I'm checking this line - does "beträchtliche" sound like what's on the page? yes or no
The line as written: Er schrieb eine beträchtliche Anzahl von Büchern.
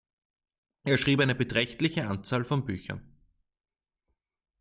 yes